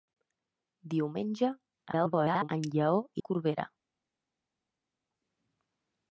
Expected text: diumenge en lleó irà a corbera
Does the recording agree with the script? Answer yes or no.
no